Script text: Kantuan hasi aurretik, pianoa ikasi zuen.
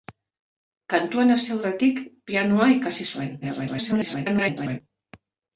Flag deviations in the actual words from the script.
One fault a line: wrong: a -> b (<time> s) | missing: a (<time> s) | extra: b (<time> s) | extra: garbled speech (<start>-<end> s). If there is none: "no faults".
extra: garbled speech (3.4-4.8 s)